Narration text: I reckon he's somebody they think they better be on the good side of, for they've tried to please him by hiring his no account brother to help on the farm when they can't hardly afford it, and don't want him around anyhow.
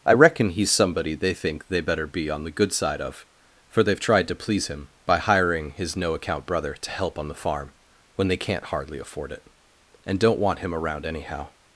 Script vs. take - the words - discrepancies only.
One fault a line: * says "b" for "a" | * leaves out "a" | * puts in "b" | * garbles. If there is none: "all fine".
all fine